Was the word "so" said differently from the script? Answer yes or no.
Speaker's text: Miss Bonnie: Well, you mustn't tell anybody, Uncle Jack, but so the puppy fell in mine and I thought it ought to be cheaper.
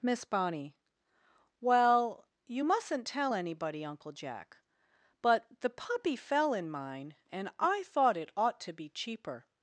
yes